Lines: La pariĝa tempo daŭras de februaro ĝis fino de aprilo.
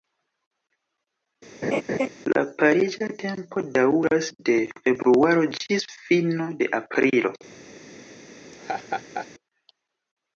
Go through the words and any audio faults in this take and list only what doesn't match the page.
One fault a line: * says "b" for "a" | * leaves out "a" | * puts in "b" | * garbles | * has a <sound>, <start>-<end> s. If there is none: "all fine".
* has a laugh, 1.6-2.1 s
* has a laugh, 8.5-9.3 s